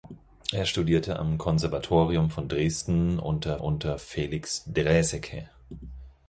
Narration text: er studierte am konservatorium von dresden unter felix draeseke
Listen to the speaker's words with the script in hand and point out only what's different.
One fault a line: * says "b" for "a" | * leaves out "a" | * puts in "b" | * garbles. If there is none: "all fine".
* puts in "unter"